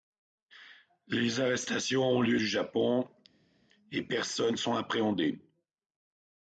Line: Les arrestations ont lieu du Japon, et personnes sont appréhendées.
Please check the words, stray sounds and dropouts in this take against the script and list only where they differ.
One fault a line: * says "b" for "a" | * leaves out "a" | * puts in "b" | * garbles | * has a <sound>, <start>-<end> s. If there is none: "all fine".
all fine